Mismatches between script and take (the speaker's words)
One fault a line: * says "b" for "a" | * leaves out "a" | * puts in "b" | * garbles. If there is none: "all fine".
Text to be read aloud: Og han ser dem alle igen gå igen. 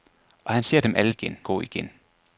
all fine